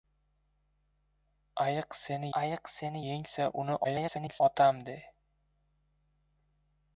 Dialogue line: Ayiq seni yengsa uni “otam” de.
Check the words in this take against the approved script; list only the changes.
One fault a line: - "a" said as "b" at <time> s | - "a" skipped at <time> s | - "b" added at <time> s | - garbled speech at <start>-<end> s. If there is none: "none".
- "ayiq seni" added at 2.4 s
- garbled speech at 3.8-4.4 s